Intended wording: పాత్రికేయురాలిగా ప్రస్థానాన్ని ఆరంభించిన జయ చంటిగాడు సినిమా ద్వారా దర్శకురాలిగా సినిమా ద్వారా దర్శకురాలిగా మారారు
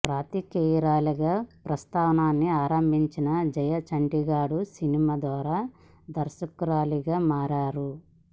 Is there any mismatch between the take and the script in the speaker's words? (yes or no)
yes